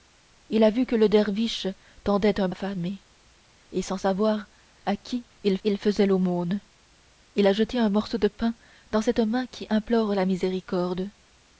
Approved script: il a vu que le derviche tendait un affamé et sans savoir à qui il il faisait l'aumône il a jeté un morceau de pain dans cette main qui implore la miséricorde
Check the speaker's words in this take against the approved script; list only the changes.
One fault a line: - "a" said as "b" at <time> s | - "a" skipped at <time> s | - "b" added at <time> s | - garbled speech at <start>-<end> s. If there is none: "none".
none